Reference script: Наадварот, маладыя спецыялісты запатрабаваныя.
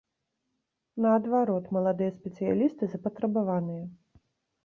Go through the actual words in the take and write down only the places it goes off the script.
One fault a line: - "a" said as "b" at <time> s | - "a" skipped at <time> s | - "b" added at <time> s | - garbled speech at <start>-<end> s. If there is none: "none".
none